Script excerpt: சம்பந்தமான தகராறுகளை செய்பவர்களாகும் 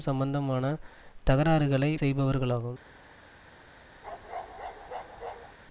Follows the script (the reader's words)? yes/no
yes